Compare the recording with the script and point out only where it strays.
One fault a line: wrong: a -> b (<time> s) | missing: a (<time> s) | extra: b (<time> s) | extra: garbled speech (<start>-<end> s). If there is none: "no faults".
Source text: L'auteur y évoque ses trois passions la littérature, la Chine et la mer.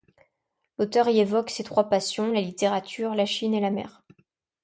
no faults